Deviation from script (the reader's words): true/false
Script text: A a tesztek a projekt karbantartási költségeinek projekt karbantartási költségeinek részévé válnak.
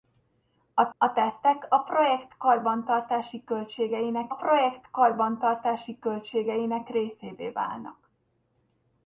false